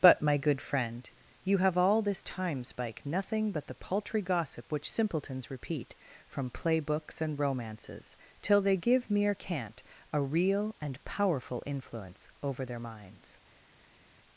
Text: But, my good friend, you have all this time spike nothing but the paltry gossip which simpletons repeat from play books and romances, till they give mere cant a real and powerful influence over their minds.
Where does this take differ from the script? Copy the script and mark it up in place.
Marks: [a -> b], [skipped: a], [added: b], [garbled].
But, my good friend, you have all this time spike nothing but the paltry gossip which simpletons repeat from play books and romances, till they give mere cant a real and powerful influence over their minds.